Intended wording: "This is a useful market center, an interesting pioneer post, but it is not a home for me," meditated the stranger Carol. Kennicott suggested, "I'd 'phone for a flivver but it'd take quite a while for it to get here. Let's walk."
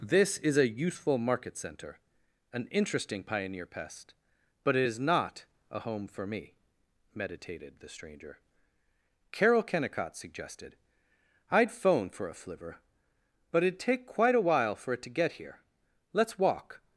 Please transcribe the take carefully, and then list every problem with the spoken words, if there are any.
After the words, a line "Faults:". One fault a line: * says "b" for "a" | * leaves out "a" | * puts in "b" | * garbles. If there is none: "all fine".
"This is a useful market center, an interesting pioneer pest, but it is not a home for me," meditated the stranger Carol. Kennicott suggested, "I'd 'phone for a flivver but it'd take quite a while for it to get here. Let's walk."
Faults:
* says "pest" for "post"